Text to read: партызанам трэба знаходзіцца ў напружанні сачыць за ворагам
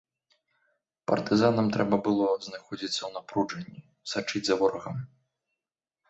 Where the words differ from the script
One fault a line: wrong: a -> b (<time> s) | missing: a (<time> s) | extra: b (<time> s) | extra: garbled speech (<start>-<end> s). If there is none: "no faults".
extra: было (2.1 s)